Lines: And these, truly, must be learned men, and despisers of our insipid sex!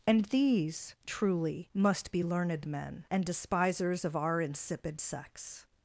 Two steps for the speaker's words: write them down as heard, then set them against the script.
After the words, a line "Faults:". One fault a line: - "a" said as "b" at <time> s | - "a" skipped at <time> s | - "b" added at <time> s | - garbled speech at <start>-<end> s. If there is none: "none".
And these, truly, must be learned men, and despisers of our insipid sex!
Faults:
none